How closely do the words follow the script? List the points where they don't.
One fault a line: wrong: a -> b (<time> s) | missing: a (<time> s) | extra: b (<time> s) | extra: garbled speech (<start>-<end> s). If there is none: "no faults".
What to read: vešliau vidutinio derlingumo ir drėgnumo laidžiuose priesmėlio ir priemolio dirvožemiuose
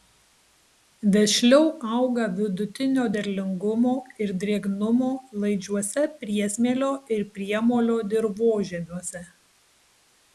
extra: auga (2.0 s)